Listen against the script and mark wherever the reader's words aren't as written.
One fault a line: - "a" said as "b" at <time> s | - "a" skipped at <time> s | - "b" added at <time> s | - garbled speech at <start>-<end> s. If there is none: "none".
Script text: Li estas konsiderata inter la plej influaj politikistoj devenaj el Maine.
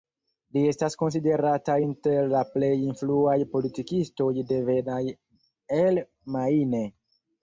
none